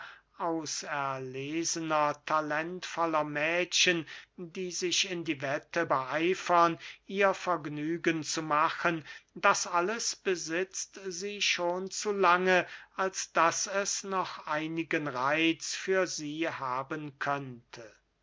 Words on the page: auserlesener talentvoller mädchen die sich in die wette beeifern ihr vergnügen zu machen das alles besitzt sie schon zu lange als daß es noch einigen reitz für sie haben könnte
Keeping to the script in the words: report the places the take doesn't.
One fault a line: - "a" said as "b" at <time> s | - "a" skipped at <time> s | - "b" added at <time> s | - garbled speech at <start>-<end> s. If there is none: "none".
none